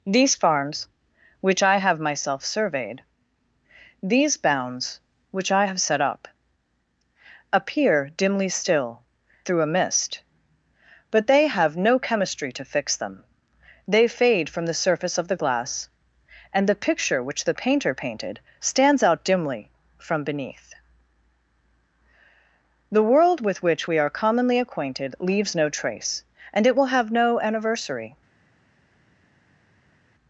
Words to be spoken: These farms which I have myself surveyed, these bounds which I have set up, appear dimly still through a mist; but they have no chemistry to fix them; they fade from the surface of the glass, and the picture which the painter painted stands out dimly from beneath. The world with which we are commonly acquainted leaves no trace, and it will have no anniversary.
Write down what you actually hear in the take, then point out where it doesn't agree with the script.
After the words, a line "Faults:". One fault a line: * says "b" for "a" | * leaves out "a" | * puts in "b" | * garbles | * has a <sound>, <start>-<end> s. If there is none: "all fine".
These farms which I have myself surveyed, these bounds which I have set up, appear dimly still through a mist; but they have no chemistry to fix them; they fade from the surface of the glass, and the picture which the painter painted stands out dimly from beneath. The world with which we are commonly acquainted leaves no trace, and it will have no anniversary.
Faults:
all fine